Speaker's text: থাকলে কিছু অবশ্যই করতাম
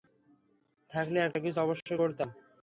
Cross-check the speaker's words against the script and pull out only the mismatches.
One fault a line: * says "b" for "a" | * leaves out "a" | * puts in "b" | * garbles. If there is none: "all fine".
* puts in "একটা"